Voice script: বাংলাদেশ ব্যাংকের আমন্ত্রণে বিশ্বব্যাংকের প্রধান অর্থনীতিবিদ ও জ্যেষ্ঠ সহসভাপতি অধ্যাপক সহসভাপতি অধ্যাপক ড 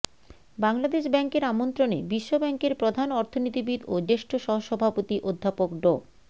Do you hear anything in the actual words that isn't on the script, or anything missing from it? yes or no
yes